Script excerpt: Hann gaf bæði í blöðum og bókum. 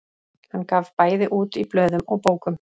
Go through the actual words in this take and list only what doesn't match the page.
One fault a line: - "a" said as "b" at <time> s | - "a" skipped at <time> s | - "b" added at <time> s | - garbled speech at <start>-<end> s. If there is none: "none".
- "út" added at 1.4 s